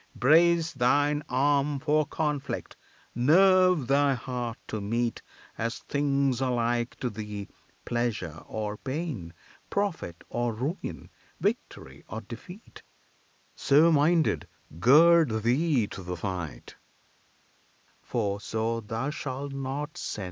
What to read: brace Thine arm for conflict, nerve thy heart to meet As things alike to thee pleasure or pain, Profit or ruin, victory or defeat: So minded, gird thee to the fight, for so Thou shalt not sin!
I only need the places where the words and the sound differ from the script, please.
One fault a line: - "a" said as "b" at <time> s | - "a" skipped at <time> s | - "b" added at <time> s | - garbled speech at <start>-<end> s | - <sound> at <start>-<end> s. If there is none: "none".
none